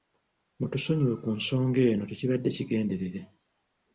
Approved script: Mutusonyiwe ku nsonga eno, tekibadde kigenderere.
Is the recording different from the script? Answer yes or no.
no